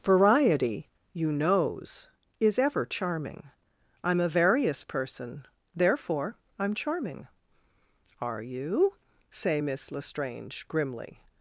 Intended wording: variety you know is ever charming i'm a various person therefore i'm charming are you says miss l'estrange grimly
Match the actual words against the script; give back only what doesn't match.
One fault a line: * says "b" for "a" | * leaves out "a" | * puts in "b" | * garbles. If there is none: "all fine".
* says "knows" for "know"
* says "say" for "says"